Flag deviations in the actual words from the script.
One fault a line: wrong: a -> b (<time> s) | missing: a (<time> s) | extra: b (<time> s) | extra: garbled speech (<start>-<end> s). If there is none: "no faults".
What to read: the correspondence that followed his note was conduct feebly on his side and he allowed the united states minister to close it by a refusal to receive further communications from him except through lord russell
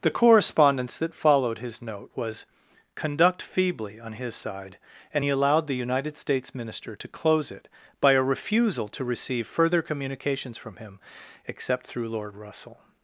no faults